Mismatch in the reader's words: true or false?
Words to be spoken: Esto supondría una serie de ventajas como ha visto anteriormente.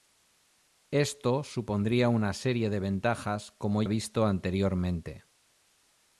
false